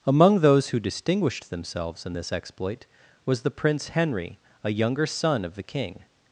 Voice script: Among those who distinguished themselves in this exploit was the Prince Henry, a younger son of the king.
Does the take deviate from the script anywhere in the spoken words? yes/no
no